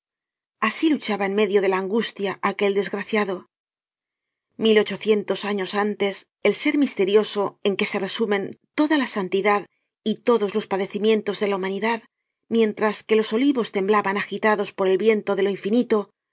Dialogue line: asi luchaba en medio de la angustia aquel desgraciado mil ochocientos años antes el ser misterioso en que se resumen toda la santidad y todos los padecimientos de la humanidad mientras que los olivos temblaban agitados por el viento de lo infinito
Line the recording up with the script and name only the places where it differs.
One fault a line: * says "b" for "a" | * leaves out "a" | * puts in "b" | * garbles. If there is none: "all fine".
all fine